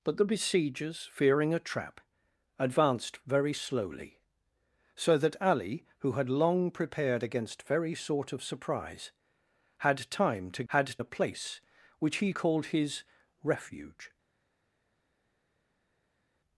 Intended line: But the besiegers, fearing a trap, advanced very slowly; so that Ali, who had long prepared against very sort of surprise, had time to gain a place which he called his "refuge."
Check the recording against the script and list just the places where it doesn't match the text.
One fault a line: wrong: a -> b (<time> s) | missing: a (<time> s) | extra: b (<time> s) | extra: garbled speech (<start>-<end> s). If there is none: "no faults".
wrong: gain -> had (10.7 s)